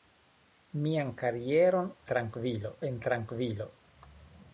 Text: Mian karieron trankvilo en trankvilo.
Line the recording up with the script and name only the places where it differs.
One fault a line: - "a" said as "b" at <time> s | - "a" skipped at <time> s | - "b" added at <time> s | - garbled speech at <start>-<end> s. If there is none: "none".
none